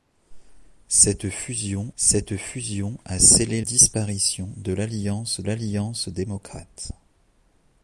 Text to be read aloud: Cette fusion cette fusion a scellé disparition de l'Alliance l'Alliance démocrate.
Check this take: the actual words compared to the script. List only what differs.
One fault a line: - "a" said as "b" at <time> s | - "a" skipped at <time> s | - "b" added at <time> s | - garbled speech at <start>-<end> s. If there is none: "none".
none